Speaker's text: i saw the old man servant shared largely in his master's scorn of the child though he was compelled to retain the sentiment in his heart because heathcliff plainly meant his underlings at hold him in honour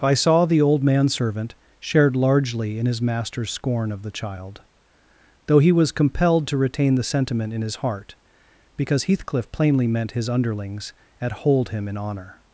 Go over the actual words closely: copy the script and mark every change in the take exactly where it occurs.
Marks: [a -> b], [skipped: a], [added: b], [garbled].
i saw the old man servant shared largely in his master's scorn of the child though he was compelled to retain the sentiment in his heart because heathcliff plainly meant his underlings at hold him in honour